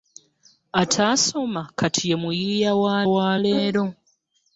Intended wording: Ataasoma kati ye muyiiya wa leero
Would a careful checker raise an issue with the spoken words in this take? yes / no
yes